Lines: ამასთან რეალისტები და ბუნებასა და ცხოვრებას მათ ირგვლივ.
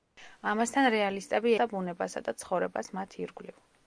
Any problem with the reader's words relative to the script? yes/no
no